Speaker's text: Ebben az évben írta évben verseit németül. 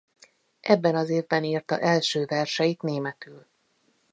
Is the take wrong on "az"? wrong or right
right